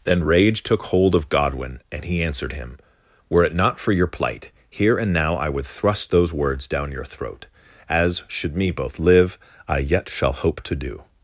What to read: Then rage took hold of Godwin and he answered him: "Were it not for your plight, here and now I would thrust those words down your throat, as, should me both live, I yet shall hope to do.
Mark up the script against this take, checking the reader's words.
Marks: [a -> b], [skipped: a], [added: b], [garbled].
Then rage took hold of Godwin and he answered him: "Were it not for your plight, here and now I would thrust those words down your throat, as, should me both live, I yet shall hope to do.